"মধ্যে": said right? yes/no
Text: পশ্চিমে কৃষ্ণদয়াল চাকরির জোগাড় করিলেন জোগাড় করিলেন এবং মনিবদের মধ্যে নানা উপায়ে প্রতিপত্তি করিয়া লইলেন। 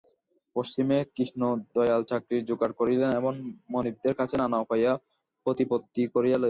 no